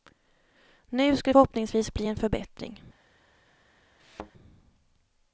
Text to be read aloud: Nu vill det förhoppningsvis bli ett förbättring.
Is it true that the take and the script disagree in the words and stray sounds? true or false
true